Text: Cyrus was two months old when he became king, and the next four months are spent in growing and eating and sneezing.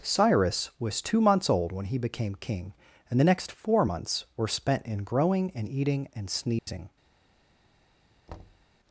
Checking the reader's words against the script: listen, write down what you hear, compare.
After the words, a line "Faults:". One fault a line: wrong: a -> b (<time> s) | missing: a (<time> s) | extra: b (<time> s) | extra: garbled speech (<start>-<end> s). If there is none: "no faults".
Cyrus was two months old when he became king, and the next four months were spent in growing and eating and sneezing.
Faults:
wrong: are -> were (4.4 s)